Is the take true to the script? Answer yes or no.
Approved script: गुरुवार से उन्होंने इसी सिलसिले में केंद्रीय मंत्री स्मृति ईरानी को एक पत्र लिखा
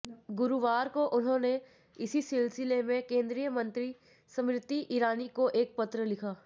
no